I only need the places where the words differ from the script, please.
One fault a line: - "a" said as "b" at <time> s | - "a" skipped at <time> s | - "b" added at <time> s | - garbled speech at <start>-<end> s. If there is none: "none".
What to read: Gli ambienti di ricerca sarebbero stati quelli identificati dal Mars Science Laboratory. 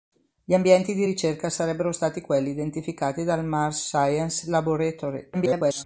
- garbled speech at 5.3-5.8 s